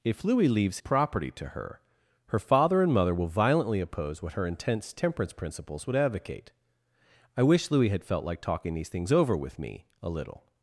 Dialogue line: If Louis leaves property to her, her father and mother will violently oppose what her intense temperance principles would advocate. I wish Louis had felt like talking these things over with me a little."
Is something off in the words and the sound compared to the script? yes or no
no